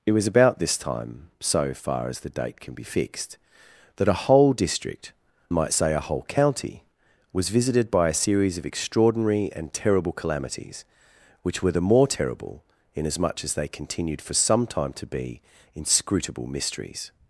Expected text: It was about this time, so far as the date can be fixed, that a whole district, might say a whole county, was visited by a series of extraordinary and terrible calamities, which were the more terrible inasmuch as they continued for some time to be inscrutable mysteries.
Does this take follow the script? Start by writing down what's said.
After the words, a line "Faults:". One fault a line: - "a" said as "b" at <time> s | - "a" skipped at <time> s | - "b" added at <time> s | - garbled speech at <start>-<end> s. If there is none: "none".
It was about this time, so far as the date can be fixed, that a whole district, might say a whole county, was visited by a series of extraordinary and terrible calamities, which were the more terrible inasmuch as they continued for some time to be inscrutable mysteries.
Faults:
none